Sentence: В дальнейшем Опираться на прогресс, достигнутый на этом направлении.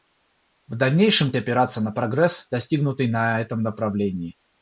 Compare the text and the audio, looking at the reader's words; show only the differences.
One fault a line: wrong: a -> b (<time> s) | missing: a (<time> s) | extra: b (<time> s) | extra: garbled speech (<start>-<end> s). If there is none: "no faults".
no faults